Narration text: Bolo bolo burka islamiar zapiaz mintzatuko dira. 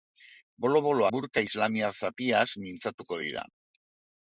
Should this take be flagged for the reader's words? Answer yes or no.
no